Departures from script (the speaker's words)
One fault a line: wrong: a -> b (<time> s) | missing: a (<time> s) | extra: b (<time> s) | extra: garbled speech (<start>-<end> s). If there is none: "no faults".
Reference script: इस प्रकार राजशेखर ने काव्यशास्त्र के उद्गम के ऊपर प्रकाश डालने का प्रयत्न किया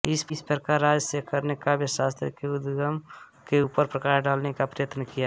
no faults